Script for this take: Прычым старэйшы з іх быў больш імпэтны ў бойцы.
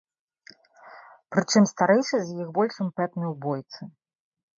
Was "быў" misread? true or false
true